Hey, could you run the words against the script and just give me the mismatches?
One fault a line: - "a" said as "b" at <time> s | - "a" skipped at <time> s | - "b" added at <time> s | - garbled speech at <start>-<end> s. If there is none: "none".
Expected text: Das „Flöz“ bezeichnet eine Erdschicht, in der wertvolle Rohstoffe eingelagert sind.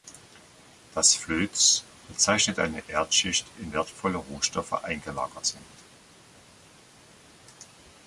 - "der" skipped at 3.7 s